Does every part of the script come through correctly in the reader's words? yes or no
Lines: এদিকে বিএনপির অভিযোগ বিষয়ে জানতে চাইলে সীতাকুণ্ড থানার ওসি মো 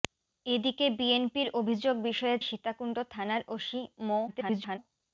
no